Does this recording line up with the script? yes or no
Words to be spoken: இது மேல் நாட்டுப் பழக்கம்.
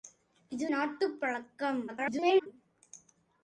no